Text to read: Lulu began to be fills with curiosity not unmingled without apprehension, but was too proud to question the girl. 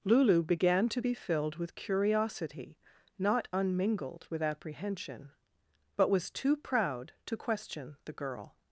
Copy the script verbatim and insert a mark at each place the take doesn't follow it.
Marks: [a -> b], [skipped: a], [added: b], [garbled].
Lulu began to be [fills -> filled] with curiosity not unmingled [without -> with] apprehension, but was too proud to question the girl.